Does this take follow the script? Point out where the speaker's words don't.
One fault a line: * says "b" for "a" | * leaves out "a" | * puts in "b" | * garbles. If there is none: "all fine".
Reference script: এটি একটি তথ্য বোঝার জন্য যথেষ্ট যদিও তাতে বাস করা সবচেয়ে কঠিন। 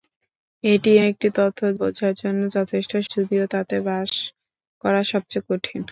all fine